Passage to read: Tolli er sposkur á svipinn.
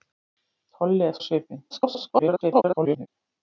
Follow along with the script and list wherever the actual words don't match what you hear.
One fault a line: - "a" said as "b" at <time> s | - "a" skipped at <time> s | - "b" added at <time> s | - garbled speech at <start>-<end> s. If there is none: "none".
- "sposkur" skipped at 1.1 s
- garbled speech at 1.7-3.1 s